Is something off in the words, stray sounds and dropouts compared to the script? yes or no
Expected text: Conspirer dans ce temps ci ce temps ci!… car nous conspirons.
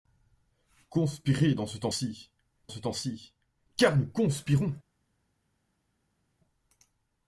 no